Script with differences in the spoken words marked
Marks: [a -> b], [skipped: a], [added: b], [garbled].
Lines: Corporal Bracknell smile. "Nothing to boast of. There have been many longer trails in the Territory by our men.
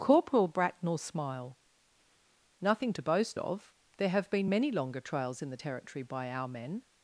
Corporal Bracknell smile. "Nothing to boast of. There have been many longer trails in the Territory by our men.